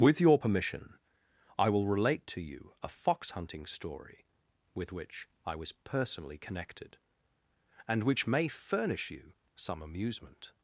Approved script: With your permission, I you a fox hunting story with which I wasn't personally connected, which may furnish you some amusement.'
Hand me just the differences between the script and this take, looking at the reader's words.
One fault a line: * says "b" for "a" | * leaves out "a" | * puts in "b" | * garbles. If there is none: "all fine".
* puts in "will relate to"
* says "was" for "wasn't"
* puts in "and"